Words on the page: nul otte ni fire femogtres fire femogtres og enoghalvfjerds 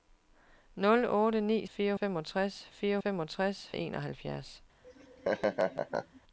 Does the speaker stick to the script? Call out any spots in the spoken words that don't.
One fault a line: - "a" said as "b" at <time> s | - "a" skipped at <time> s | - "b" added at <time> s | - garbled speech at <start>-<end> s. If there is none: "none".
none